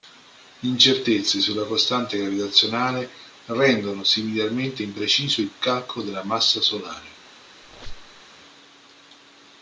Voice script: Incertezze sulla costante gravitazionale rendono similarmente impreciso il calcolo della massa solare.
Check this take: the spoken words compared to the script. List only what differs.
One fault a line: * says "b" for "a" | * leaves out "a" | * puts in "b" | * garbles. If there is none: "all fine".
all fine